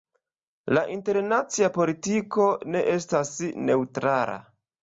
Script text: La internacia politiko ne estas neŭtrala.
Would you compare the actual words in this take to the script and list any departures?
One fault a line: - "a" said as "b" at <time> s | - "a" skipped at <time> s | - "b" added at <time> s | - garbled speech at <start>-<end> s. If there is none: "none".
none